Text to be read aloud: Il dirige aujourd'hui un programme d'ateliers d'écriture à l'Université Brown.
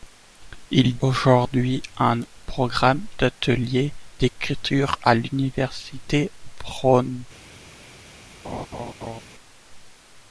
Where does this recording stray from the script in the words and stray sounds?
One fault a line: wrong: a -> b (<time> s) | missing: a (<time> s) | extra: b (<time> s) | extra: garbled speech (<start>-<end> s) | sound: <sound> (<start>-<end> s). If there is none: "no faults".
missing: dirige (1.0 s)
sound: laugh (8.4-9.2 s)